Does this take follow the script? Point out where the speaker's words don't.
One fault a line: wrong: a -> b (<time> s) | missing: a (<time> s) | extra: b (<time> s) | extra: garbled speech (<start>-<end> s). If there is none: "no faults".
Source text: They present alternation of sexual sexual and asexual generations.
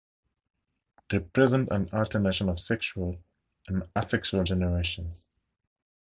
extra: an (1.7 s)
missing: sexual (3.2 s)